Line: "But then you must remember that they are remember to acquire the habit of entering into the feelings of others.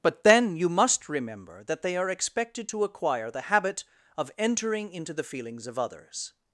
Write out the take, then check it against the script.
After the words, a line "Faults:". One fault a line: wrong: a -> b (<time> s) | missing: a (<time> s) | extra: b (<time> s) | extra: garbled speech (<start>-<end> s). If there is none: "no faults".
"But then you must remember that they are expected to acquire the habit of entering into the feelings of others.
Faults:
wrong: remember -> expected (2.1 s)